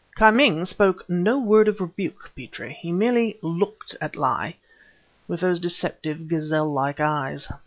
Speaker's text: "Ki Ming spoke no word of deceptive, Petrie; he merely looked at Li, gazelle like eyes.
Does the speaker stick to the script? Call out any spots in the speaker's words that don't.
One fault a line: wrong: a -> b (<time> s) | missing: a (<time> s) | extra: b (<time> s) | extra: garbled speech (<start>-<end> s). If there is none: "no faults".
wrong: deceptive -> rebuke (1.8 s)
extra: with those deceptive (5.3 s)